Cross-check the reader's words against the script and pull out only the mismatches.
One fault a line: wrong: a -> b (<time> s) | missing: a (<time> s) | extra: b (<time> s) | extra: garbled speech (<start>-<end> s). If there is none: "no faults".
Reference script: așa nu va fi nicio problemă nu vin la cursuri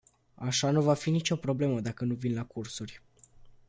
extra: dacă (1.8 s)